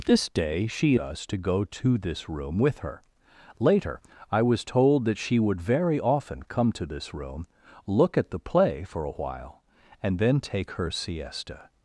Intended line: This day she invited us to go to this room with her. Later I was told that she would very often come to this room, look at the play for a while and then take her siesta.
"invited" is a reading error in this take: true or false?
true